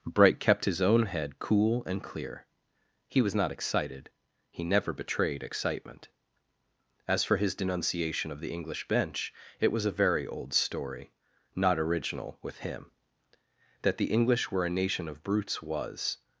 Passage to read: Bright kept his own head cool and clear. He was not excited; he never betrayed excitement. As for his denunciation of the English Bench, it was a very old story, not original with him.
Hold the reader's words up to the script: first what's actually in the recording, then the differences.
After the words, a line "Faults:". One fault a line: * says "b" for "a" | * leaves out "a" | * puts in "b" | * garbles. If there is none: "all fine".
Bright kept his own head cool and clear. He was not excited; he never betrayed excitement. As for his denunciation of the English Bench, it was a very old story, not original with him. That the English were a nation of brutes was
Faults:
* puts in "That the English were a nation of brutes was"